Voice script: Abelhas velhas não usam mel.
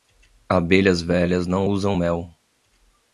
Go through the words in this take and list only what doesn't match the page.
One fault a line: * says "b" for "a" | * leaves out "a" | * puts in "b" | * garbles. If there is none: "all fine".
all fine